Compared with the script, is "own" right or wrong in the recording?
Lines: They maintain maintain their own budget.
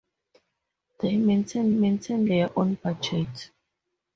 right